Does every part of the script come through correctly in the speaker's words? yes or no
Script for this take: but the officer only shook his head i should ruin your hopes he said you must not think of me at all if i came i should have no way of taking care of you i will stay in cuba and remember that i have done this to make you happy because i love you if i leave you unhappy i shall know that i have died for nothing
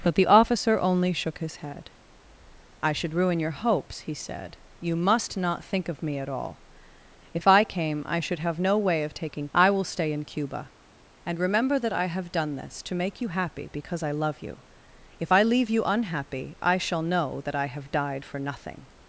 no